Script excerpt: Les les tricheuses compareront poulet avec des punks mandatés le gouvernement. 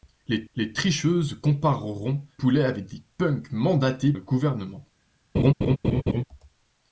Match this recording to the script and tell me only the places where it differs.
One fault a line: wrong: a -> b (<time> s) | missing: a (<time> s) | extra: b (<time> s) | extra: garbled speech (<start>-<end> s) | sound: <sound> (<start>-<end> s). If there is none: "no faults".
sound: laugh (5.3-6.2 s)